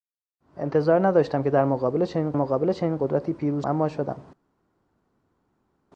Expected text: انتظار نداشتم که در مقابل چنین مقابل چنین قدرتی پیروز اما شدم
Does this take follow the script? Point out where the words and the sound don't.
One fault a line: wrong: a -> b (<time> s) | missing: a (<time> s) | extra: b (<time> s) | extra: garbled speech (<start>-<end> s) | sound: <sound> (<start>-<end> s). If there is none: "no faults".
no faults